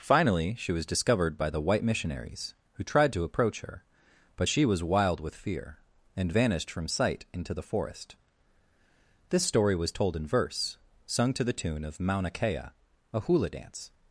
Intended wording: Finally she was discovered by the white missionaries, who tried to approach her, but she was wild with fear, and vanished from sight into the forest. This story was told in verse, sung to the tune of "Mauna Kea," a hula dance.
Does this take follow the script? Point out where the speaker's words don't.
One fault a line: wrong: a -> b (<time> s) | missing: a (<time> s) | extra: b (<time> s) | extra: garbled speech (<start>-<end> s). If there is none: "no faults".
no faults